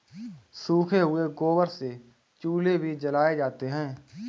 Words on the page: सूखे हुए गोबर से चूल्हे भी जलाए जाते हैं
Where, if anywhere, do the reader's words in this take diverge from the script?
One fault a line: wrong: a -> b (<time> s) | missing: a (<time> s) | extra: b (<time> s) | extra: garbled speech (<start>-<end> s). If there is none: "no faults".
no faults